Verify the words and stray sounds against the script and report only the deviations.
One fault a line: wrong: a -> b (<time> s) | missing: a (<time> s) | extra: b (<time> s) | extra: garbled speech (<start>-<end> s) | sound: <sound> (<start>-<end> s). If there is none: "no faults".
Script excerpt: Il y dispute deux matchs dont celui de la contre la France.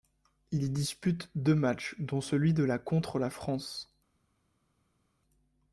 no faults